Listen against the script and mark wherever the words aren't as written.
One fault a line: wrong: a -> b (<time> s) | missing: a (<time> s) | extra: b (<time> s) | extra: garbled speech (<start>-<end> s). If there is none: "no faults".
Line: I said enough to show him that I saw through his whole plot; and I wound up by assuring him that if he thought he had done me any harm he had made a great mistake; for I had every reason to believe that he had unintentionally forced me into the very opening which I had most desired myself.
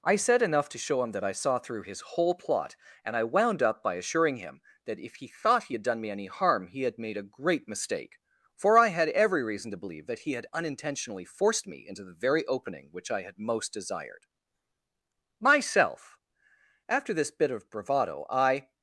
extra: After this bit of bravado I (16.9 s)